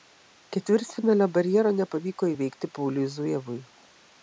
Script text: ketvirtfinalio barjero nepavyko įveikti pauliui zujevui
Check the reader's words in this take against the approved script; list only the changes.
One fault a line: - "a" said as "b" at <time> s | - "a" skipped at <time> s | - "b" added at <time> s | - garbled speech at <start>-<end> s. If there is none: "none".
none